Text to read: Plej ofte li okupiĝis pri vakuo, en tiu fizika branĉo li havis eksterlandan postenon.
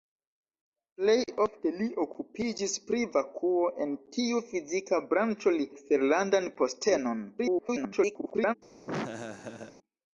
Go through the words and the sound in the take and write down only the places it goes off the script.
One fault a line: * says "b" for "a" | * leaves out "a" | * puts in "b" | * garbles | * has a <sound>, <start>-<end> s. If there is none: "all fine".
* leaves out "havis"
* garbles
* has a laugh, 8.9-9.8 s